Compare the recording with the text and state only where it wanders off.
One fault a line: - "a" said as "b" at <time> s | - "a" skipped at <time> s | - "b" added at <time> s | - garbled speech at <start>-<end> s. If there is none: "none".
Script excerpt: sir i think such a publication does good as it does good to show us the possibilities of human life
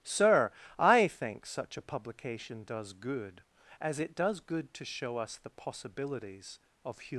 - "life" skipped at 7.1 s